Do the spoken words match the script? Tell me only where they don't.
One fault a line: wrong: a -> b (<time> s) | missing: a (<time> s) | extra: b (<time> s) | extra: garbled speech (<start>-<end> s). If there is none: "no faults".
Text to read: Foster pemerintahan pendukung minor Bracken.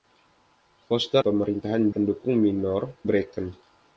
no faults